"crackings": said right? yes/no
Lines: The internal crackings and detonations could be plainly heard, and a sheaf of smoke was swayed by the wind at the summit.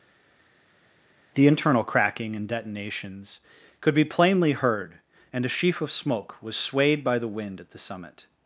no